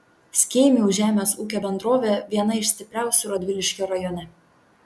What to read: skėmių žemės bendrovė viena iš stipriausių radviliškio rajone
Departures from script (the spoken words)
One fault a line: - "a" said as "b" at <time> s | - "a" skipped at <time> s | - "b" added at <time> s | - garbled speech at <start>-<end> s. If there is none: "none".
- "ūkio" added at 1.4 s